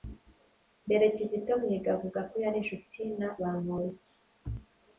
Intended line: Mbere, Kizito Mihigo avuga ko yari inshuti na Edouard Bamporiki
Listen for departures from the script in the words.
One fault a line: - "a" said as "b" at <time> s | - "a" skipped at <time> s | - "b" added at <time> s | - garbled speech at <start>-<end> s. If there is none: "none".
- "Edouard" skipped at 3.3 s